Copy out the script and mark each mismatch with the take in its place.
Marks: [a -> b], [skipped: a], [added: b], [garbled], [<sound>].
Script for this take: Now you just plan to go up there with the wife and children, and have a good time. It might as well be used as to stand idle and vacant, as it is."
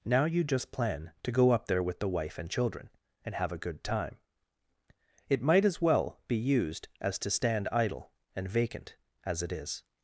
Now you just plan to go up there with the wife and children, and have a good time. It might as well be used as to stand idle and vacant, as it is."